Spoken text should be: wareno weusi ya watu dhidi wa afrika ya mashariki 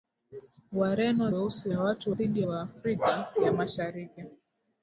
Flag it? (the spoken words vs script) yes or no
no